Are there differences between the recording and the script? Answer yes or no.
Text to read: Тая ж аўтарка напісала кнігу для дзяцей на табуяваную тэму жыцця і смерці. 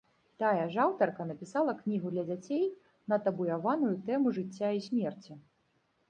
no